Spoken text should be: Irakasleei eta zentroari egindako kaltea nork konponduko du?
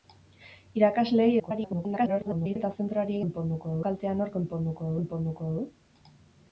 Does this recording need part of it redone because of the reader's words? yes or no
yes